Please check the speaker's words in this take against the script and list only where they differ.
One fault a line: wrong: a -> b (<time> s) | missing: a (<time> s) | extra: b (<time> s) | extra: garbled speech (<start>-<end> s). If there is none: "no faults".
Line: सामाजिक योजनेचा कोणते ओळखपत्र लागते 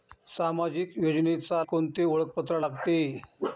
no faults